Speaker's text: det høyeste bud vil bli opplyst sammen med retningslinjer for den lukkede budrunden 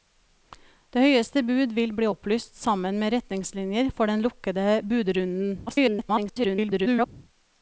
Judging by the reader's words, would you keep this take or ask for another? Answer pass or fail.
fail